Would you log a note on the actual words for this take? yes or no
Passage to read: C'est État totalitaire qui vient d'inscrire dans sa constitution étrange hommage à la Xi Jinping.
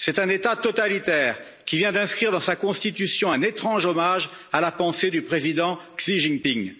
yes